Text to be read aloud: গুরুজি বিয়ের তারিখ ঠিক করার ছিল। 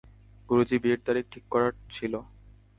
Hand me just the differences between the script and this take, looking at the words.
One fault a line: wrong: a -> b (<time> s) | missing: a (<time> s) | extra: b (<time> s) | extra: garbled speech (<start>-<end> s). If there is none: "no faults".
no faults